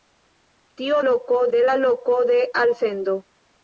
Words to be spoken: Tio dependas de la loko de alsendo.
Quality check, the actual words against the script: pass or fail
fail